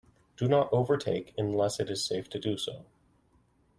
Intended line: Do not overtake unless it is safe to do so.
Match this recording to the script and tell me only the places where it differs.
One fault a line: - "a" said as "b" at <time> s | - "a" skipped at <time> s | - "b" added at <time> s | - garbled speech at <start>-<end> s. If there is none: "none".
none